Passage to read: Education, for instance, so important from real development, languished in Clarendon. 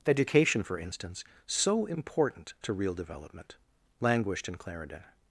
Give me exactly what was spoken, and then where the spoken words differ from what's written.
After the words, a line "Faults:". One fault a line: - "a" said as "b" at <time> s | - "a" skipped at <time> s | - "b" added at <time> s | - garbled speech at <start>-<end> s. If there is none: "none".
Education, for instance, so important to real development, languished in Clarendon.
Faults:
- "from" said as "to" at 2.6 s